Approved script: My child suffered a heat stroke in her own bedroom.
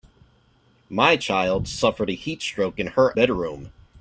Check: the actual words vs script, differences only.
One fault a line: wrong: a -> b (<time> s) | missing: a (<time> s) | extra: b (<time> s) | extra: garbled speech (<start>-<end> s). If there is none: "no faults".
missing: own (3.1 s)